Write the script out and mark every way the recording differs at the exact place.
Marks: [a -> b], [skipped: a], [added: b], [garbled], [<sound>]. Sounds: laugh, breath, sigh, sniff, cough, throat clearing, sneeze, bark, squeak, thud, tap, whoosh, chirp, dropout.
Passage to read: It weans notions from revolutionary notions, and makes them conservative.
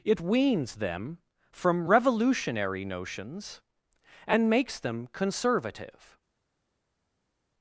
It weans [notions -> them] from revolutionary notions, and makes them conservative.